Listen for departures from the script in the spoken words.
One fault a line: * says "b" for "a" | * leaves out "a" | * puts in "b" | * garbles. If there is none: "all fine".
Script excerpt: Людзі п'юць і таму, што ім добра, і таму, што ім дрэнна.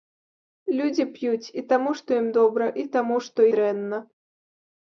* leaves out "ім"